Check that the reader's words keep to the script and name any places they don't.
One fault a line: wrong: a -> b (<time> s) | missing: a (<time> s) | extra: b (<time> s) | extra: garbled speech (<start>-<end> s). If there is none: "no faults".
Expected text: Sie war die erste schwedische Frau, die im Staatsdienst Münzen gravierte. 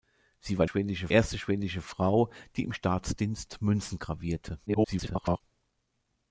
wrong: die -> schwedische (0.6 s)
extra: garbled speech (4.7-5.4 s)